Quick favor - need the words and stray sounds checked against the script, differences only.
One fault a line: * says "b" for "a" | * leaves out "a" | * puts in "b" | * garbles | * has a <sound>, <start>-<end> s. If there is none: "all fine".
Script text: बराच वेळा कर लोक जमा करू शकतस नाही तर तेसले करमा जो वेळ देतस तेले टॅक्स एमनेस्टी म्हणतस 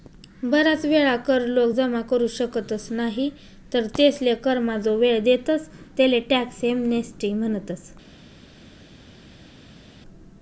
all fine